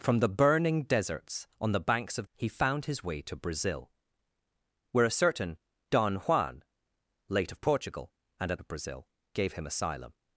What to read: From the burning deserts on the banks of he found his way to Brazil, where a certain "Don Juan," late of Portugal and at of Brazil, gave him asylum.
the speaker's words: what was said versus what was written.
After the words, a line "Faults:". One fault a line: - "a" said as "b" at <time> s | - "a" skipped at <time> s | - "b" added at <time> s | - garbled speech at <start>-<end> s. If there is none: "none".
From the burning deserts on the banks of he found his way to Brazil, where a certain "Don Juan," late of Portugal and at of Brazil, gave him asylum.
Faults:
none